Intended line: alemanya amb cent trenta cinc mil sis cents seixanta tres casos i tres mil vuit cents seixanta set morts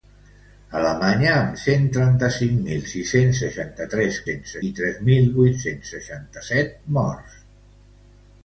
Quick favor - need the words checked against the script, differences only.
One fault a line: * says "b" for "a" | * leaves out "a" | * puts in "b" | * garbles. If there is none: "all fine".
* says "cents" for "casos"